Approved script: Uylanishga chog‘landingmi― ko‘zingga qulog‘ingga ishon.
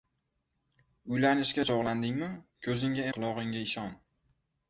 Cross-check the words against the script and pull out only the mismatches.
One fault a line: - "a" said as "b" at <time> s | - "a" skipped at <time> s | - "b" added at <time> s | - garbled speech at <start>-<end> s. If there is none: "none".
none